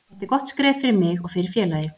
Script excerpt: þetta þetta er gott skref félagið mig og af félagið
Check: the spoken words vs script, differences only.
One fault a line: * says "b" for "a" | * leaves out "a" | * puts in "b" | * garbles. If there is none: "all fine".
* leaves out "þetta"
* says "fyrir" for "félagið"
* says "fyrir" for "af"